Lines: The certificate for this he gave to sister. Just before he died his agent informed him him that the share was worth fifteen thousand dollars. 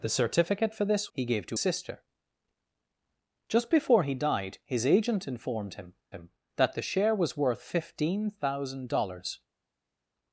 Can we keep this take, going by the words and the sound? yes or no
yes